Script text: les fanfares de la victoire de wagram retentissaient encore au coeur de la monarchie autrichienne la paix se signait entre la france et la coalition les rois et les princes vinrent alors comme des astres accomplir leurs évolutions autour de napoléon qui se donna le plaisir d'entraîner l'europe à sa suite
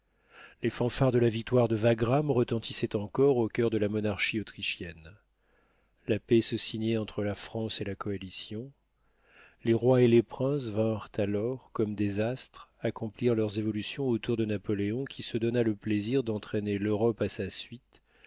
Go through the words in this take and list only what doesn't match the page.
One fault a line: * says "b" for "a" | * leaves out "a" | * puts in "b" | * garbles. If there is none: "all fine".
all fine